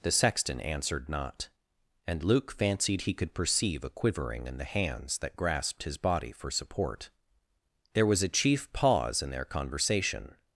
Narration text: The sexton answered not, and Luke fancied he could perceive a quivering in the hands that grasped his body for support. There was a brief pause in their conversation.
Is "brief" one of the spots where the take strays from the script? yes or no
yes